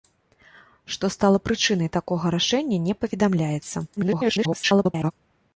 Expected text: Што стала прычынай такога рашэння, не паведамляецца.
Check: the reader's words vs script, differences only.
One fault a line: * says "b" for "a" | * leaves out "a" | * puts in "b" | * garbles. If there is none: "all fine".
* garbles